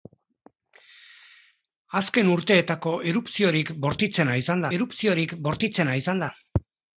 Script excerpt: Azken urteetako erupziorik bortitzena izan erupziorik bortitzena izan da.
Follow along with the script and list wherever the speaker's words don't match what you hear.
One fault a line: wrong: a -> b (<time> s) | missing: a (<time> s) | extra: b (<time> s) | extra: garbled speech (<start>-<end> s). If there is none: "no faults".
no faults